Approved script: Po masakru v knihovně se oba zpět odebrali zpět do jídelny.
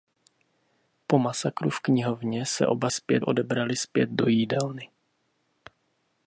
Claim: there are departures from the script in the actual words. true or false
false